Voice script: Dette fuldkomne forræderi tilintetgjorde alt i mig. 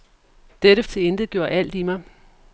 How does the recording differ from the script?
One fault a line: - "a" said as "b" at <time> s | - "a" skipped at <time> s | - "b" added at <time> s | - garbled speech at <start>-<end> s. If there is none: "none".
- "fuldkomne forræderi" skipped at 0.8 s